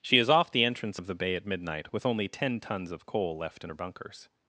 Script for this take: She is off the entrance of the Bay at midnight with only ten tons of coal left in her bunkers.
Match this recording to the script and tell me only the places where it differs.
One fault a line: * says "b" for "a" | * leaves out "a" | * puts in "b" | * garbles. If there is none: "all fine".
all fine